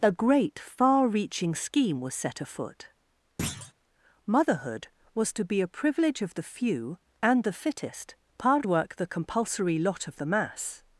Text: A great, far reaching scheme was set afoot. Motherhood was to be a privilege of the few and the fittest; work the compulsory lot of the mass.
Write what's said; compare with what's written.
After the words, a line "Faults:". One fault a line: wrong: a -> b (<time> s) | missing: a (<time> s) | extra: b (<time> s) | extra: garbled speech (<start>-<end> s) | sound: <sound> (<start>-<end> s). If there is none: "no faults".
A great, far reaching scheme was set afoot. Motherhood was to be a privilege of the few and the fittest; hard work the compulsory lot of the mass.
Faults:
sound: thud (3.4-3.7 s)
extra: hard (8.4 s)